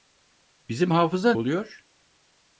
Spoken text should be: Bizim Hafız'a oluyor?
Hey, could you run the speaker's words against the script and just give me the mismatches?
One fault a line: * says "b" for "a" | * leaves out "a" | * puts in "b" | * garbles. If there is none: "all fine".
all fine